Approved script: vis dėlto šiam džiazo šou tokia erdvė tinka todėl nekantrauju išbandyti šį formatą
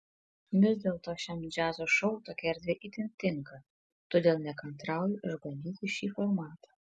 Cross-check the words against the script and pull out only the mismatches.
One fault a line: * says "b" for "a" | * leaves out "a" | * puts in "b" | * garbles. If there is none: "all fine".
* puts in "itin"